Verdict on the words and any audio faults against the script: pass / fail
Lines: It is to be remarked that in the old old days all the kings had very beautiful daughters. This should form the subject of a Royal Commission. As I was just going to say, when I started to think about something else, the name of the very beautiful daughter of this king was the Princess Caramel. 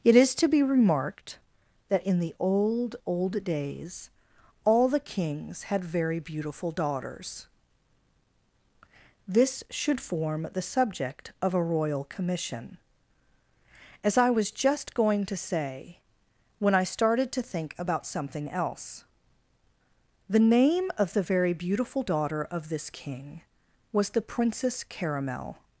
pass